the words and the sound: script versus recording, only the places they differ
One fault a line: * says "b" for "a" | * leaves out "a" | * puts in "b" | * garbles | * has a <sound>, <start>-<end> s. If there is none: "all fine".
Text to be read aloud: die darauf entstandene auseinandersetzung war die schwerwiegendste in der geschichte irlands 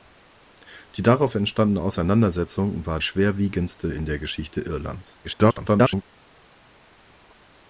* leaves out "die"
* garbles